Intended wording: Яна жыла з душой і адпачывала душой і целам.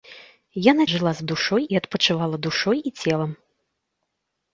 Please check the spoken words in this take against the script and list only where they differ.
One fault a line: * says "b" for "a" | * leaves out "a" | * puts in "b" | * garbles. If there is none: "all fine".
all fine